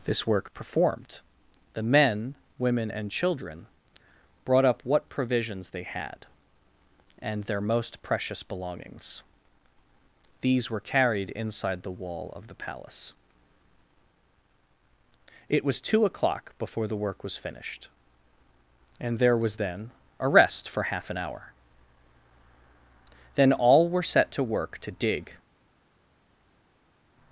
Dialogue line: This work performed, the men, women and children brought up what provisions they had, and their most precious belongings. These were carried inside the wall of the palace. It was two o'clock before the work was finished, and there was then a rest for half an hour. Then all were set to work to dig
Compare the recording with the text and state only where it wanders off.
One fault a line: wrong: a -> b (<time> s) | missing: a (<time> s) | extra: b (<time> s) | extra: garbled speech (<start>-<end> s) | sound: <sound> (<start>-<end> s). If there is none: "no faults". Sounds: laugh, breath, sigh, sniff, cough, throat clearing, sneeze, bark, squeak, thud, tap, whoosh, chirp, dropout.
no faults